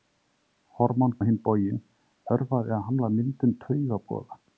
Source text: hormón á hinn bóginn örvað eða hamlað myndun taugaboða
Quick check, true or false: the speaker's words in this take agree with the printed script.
true